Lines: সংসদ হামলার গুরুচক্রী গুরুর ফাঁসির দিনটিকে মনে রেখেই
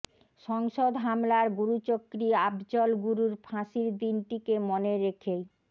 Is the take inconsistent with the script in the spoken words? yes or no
yes